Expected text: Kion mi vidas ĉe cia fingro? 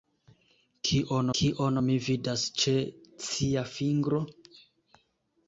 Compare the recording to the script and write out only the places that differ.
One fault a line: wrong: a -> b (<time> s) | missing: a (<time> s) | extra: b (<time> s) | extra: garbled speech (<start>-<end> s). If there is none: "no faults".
extra: kion (1.4 s)